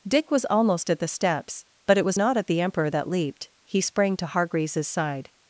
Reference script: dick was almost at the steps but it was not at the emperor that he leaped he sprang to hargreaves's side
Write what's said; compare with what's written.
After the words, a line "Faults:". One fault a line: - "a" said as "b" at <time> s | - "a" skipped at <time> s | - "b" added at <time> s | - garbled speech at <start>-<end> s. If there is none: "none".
dick was almost at the steps but it was not at the emperor that leaped he sprang to hargreaves's side
Faults:
- "he" skipped at 3.1 s